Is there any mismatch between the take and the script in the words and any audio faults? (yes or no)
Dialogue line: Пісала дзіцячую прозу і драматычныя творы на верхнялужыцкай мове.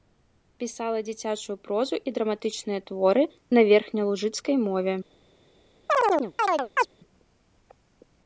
yes